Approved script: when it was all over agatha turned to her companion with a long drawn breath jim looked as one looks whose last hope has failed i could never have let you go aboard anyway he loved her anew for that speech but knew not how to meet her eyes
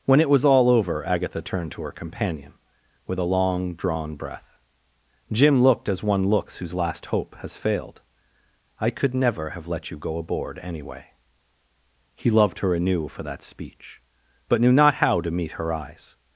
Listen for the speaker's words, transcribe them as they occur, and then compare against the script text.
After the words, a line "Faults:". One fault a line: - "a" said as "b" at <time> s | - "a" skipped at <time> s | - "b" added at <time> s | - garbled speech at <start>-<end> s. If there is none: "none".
when it was all over agatha turned to her companion with a long drawn breath jim looked as one looks whose last hope has failed i could never have let you go aboard anyway he loved her anew for that speech but knew not how to meet her eyes
Faults:
none